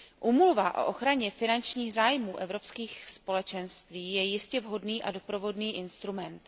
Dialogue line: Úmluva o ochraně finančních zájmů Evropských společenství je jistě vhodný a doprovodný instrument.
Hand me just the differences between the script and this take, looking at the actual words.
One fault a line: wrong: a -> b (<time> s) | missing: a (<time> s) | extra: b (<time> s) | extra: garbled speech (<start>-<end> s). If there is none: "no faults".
no faults